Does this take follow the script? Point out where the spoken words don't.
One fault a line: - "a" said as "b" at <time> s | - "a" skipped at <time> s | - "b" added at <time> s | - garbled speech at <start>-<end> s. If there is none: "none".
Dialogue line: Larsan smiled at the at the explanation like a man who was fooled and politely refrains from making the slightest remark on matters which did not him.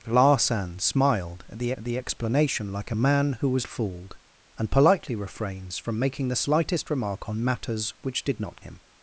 none